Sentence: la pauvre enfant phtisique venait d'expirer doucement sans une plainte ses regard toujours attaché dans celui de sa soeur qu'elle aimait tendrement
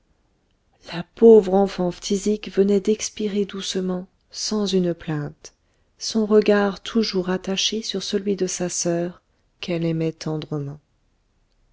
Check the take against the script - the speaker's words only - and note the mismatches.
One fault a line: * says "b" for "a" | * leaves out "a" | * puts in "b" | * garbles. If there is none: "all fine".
* says "son" for "ses"
* says "sur" for "dans"